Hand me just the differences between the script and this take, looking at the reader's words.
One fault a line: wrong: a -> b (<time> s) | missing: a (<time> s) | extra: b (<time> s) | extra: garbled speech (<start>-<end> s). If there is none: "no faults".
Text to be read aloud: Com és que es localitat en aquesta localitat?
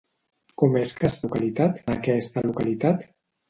no faults